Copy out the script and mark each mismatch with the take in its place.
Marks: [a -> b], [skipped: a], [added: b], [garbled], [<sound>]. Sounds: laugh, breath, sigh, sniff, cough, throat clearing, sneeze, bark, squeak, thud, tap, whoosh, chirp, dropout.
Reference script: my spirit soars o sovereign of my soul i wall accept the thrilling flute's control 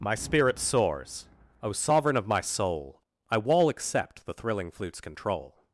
my spirit soars o sovereign of my soul i wall accept the thrilling flute's control